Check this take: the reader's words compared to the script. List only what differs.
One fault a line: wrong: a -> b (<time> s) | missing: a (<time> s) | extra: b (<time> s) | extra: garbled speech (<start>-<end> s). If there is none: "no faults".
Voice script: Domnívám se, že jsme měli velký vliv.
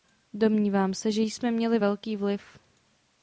no faults